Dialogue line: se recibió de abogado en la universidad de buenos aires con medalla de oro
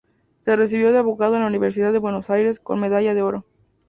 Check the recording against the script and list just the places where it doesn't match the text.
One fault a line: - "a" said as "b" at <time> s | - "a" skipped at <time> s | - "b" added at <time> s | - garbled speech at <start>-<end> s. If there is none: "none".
none